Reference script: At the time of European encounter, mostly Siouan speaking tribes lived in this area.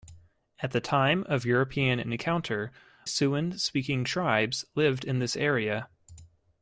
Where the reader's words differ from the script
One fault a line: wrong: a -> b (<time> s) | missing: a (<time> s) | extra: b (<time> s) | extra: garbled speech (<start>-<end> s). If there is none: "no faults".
missing: mostly (2.7 s)